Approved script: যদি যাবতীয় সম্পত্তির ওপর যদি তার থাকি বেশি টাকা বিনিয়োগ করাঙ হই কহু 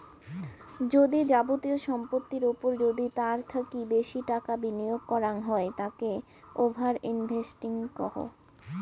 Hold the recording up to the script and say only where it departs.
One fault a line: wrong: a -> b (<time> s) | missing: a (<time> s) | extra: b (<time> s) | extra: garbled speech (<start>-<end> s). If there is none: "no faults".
extra: তাকে ওভার ইনভেস্টিং (5.8 s)